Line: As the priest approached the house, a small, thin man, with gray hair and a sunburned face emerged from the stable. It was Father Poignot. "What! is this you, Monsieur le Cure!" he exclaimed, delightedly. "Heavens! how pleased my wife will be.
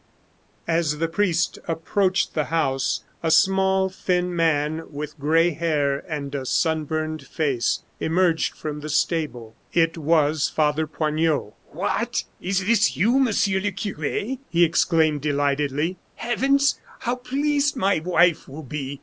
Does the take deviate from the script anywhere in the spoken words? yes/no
no